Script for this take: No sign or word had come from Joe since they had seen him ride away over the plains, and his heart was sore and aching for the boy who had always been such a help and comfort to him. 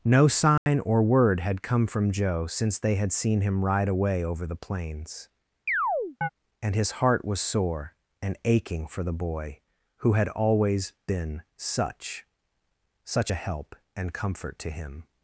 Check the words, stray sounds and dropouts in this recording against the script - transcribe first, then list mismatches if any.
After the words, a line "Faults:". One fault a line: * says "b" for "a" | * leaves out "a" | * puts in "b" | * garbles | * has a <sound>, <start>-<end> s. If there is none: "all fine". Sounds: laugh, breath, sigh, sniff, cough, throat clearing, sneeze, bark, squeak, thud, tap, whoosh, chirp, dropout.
No sign or word had come from Joe since they had seen him ride away over the plains, and his heart was sore and aching for the boy who had always been such such a help and comfort to him.
Faults:
* has a dropout, 0.6-0.7 s
* has a chirp, 5.7-6.3 s
* puts in "such"